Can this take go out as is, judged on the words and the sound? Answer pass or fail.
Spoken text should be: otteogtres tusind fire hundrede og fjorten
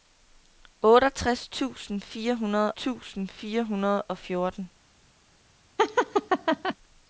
fail